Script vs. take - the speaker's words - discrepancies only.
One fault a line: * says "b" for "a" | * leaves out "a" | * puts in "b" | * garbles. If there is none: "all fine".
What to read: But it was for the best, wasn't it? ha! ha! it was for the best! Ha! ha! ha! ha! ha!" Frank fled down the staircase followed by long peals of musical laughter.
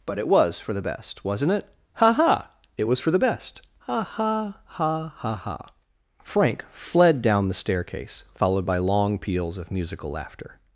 all fine